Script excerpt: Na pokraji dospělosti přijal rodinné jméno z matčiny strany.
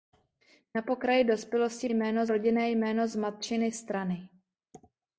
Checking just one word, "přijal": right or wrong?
wrong